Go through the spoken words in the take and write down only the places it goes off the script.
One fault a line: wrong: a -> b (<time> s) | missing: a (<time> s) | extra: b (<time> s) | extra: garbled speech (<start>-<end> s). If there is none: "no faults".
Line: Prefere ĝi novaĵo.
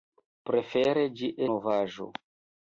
no faults